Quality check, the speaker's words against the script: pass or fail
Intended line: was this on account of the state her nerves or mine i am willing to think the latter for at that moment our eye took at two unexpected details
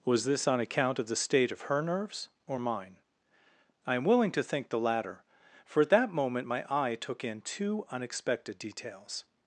fail